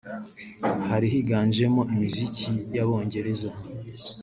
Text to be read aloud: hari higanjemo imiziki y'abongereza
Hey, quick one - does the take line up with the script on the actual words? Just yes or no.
yes